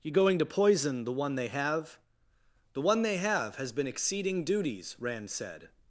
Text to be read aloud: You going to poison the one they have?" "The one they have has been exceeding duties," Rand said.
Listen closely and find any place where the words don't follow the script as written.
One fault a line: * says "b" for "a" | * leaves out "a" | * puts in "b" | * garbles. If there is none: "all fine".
all fine